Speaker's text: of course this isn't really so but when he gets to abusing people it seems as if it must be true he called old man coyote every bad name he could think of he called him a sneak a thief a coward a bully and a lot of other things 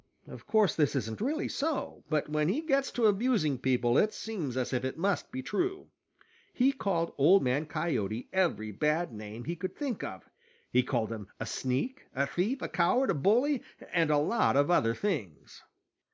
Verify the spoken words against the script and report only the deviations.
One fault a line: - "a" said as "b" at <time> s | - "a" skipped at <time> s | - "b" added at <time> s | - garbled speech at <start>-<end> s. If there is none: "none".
none